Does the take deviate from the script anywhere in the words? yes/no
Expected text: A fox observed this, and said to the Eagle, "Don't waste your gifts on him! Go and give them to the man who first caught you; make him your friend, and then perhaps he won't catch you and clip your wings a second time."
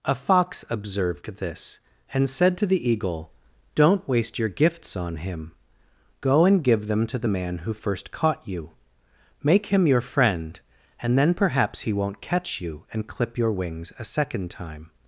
no